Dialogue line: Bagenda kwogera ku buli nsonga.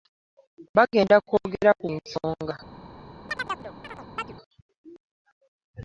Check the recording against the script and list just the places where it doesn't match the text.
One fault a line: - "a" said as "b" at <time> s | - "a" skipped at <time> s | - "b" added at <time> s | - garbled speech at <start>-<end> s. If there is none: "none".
- "buli" skipped at 1.9 s